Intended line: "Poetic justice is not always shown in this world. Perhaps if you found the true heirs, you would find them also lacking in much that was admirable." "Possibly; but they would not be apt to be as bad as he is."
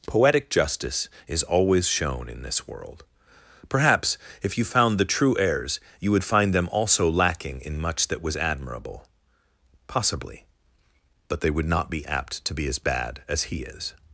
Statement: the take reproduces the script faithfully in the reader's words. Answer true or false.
false